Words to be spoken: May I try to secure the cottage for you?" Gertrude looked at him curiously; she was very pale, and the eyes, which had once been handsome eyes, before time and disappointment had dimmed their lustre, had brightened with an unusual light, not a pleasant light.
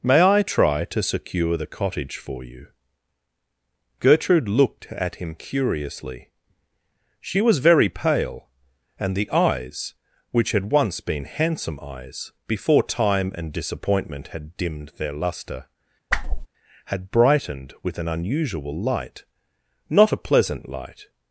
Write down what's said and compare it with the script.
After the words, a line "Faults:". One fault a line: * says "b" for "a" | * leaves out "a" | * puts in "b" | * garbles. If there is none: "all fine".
May I try to secure the cottage for you?" Gertrude looked at him curiously; she was very pale, and the eyes, which had once been handsome eyes, before time and disappointment had dimmed their lustre, had brightened with an unusual light, not a pleasant light.
Faults:
all fine